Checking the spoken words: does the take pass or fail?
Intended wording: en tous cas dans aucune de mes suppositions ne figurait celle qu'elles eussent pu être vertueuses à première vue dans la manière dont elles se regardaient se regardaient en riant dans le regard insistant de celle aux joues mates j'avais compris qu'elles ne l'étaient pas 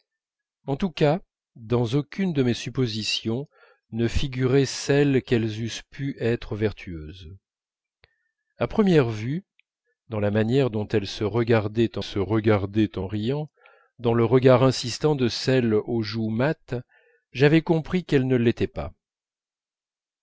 pass